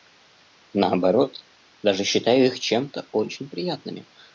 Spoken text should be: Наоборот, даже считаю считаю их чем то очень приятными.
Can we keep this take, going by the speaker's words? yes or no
no